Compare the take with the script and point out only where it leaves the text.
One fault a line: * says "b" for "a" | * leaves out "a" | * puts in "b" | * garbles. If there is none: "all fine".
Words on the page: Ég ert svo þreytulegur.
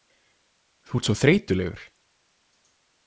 * says "Þú" for "Ég"